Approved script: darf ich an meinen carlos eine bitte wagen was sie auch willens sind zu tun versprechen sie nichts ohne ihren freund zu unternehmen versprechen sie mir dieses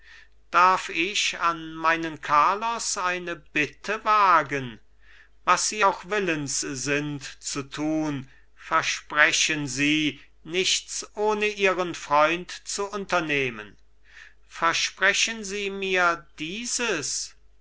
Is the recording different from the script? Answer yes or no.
no